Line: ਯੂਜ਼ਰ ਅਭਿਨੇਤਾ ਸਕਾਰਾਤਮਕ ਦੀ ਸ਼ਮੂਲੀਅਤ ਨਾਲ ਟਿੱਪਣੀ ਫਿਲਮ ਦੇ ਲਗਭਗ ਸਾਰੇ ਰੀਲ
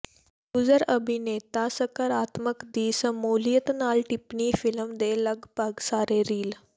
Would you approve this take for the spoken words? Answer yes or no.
yes